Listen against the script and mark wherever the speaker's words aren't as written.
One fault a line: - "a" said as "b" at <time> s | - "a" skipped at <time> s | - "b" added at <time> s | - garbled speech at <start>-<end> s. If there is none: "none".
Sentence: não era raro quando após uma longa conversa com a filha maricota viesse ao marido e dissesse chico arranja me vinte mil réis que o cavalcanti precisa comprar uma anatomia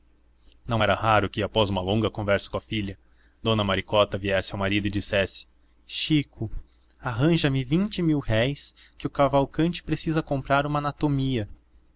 - "quando" said as "que" at 1.3 s
- "dona" added at 3.4 s